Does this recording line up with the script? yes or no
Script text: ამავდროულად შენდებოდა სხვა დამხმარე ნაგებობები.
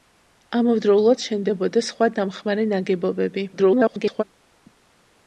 no